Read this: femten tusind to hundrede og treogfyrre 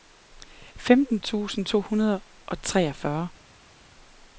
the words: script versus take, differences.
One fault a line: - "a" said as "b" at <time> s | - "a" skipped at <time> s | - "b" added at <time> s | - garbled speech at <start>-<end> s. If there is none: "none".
none